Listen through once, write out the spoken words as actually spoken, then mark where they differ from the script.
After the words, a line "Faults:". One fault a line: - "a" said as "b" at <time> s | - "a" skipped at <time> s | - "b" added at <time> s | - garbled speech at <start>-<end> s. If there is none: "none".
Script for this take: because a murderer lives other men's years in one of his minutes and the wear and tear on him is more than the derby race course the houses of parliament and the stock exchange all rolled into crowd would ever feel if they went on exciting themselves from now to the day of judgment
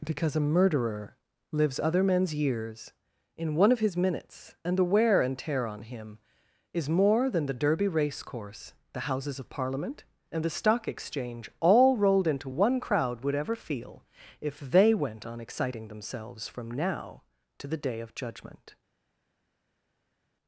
because a murderer lives other men's years in one of his minutes and the wear and tear on him is more than the derby race course the houses of parliament and the stock exchange all rolled into one crowd would ever feel if they went on exciting themselves from now to the day of judgment
Faults:
- "one" added at 12.5 s